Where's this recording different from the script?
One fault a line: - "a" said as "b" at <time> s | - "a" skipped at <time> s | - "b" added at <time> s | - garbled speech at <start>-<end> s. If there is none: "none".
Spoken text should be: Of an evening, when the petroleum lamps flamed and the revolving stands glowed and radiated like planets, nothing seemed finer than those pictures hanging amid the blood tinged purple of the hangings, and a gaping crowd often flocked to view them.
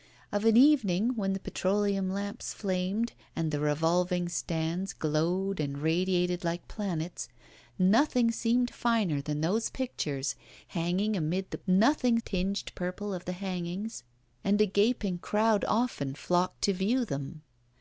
- "blood" said as "nothing" at 11.7 s